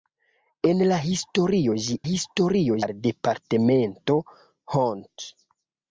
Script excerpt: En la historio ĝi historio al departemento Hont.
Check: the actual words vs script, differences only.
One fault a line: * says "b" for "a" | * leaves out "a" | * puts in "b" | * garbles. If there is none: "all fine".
all fine